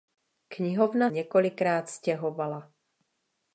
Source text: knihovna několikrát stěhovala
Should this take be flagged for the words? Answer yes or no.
no